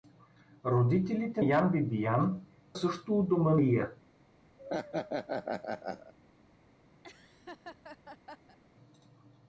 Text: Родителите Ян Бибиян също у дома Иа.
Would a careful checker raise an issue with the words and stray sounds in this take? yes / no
yes